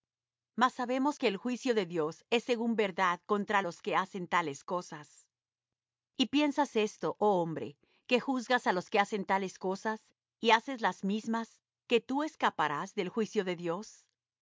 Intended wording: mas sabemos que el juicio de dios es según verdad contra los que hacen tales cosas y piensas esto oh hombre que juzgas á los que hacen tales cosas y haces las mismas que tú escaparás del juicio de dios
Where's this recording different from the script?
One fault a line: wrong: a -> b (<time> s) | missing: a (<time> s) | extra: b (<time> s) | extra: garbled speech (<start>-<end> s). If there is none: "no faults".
no faults